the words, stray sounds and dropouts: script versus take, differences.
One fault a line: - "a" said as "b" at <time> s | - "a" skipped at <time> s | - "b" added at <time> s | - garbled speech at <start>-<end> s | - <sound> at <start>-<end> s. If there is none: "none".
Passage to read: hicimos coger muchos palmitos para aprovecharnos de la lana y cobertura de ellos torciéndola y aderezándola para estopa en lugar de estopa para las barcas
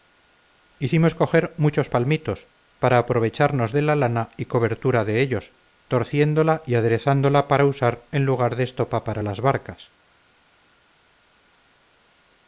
- "estopa" said as "usar" at 7.6 s